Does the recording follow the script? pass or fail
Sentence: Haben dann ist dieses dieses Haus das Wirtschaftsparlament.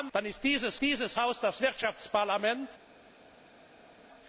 pass